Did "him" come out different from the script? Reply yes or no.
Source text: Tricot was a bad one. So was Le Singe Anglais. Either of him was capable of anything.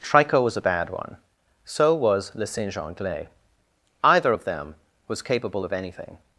yes